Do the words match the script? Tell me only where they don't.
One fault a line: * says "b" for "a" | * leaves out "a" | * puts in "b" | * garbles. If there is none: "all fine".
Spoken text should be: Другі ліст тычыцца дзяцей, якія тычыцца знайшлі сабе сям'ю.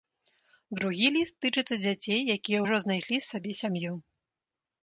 * says "ўжо" for "тычыцца"